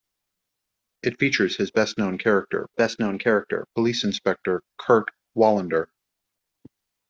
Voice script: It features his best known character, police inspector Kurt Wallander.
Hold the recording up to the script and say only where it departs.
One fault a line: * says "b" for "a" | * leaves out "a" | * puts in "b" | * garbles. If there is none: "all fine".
* puts in "best known character"